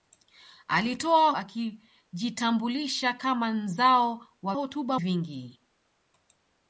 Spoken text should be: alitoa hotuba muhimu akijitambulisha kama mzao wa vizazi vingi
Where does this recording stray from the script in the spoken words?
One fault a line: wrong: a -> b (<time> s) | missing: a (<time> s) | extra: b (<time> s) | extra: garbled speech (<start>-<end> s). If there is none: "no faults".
missing: hotuba muhimu (1.3 s)
wrong: vizazi -> hotuba (4.5 s)